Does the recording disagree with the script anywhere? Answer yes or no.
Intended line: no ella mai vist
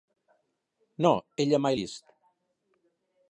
no